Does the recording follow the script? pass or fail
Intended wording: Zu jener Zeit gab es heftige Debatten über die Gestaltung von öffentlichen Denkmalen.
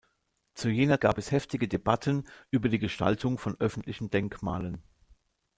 fail